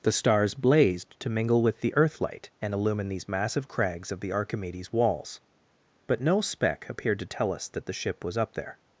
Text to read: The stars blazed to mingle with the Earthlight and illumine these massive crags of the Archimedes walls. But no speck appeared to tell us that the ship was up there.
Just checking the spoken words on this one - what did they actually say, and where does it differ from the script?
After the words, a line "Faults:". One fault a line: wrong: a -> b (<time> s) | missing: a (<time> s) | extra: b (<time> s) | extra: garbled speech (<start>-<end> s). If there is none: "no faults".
The stars blazed to mingle with the Earthlight and illumine these massive crags of the Archimedes walls. But no speck appeared to tell us that the ship was up there.
Faults:
no faults